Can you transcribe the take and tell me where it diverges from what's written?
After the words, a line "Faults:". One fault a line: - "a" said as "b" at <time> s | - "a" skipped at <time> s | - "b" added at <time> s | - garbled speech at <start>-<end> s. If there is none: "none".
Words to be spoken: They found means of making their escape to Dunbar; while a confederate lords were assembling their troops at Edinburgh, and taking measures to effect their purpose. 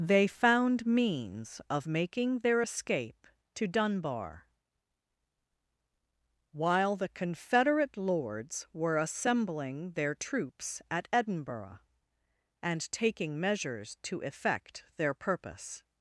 They found means of making their escape to Dunbar; while the confederate lords were assembling their troops at Edinburgh, and taking measures to effect their purpose.
Faults:
- "a" said as "the" at 7.0 s